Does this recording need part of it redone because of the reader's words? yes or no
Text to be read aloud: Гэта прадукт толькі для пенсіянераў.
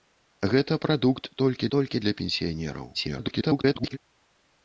yes